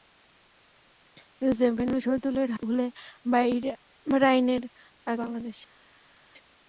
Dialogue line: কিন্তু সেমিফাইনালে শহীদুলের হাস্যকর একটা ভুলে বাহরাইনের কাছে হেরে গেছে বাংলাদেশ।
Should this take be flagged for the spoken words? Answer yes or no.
yes